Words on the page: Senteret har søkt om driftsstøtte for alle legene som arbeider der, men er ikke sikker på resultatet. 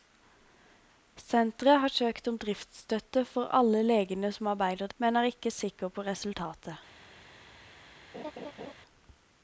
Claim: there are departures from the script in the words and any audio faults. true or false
true